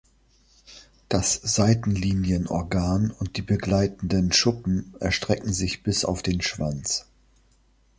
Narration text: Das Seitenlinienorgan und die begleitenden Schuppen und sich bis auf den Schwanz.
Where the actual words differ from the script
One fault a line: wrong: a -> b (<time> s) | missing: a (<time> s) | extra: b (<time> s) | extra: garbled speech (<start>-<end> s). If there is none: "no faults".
wrong: und -> erstrecken (5.0 s)